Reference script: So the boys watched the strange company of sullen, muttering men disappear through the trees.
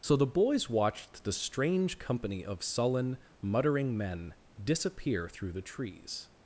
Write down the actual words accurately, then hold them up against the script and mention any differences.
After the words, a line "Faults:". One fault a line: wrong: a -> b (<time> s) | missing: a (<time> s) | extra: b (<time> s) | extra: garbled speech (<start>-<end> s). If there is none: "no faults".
So the boys watched the strange company of sullen, muttering men disappear through the trees.
Faults:
no faults